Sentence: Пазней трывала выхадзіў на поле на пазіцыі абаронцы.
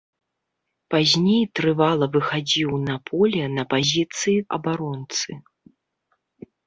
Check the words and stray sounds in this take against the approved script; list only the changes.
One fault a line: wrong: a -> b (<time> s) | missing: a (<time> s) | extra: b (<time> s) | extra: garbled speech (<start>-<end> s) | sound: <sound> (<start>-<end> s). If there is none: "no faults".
no faults